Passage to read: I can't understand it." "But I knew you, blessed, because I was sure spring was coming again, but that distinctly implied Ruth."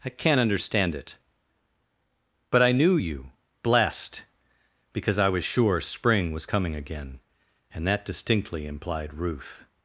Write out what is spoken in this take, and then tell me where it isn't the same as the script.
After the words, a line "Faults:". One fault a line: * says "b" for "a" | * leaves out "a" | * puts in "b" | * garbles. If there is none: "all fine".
I can't understand it." "But I knew you, blessed, because I was sure spring was coming again, and that distinctly implied Ruth."
Faults:
* says "and" for "but"